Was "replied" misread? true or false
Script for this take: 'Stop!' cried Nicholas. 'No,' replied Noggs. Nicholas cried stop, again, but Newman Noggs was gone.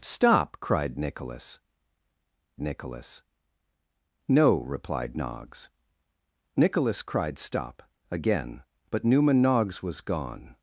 false